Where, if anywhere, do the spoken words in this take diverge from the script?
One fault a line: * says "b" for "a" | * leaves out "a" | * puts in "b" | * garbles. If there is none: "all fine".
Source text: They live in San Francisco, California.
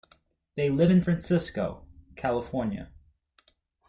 * leaves out "San"